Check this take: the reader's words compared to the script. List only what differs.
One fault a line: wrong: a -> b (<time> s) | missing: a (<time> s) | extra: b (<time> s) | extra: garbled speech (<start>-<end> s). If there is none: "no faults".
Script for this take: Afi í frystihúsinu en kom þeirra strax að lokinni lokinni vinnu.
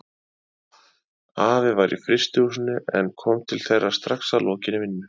extra: var (1.8 s)
extra: til (3.5 s)
missing: lokinni (4.8 s)